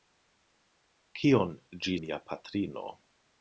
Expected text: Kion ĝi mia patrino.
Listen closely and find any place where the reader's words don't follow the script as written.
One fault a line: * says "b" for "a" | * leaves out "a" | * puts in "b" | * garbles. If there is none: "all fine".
all fine